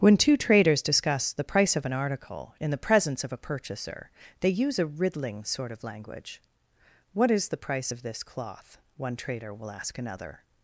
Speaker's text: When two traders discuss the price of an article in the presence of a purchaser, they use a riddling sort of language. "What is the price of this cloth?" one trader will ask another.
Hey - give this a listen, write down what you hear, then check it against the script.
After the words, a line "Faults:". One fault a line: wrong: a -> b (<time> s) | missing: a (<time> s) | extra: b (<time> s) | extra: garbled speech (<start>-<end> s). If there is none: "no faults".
When two traders discuss the price of an article in the presence of a purchaser, they use a riddling sort of language. "What is the price of this cloth?" one trader will ask another.
Faults:
no faults